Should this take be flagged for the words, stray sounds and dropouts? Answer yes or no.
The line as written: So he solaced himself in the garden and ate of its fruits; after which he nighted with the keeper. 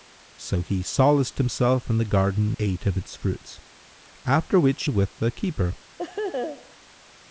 yes